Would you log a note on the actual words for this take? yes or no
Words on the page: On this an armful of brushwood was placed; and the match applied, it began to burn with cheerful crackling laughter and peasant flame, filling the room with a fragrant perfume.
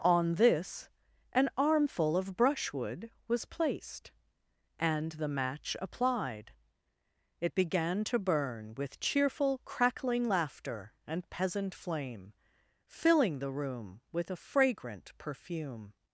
no